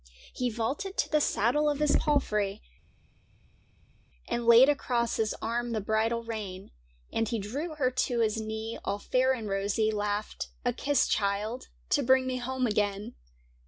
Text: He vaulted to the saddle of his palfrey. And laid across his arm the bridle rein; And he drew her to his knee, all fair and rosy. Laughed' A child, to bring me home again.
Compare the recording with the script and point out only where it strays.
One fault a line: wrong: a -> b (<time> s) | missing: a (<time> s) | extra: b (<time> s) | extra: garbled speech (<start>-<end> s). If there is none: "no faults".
extra: kiss (10.7 s)